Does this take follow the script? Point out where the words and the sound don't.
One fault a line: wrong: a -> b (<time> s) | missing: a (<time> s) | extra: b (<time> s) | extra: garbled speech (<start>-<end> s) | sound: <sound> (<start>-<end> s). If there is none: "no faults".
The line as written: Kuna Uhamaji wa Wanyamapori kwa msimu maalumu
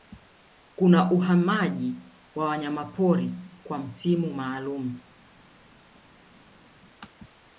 no faults